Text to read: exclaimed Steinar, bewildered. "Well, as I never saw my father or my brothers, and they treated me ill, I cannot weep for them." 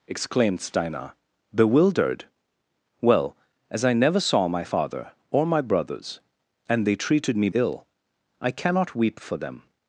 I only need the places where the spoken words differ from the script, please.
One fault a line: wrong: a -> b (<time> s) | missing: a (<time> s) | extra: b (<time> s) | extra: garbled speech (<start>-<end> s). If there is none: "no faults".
no faults